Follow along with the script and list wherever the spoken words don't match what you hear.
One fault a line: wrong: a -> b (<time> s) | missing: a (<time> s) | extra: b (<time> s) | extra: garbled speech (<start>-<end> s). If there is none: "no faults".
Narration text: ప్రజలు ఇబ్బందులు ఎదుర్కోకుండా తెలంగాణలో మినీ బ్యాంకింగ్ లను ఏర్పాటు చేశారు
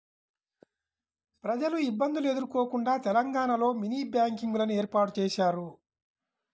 no faults